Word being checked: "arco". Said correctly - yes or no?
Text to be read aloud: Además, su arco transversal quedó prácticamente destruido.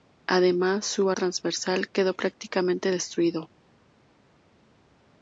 no